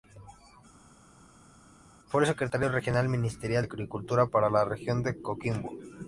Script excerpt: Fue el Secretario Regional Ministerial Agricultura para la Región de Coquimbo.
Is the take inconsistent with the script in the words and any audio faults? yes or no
no